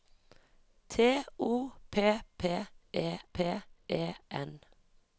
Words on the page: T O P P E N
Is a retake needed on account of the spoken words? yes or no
yes